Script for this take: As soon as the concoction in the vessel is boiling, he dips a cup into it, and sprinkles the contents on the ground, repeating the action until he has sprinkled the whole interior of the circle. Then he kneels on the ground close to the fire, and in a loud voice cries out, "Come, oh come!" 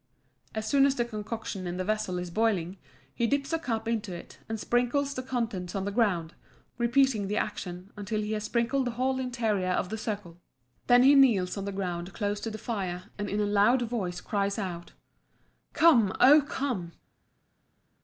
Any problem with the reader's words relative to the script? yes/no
no